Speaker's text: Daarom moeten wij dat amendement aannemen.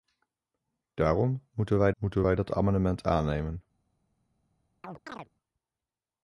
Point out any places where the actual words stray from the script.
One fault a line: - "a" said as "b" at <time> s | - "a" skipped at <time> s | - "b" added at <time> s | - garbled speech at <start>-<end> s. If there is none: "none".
- "moeten wij" added at 1.9 s